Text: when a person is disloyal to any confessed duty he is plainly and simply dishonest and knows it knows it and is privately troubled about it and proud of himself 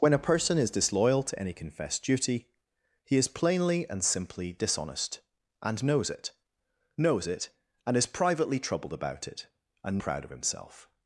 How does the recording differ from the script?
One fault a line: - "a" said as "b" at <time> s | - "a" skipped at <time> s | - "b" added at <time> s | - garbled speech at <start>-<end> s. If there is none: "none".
none